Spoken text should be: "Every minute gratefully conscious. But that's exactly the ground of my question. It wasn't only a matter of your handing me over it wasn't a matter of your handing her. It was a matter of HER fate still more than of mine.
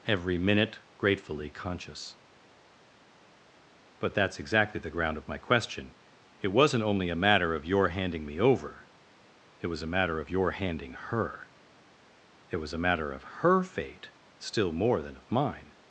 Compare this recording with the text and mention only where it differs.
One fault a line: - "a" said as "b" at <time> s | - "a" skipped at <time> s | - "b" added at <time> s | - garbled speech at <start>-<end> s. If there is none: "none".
- "wasn't" said as "was" at 9.7 s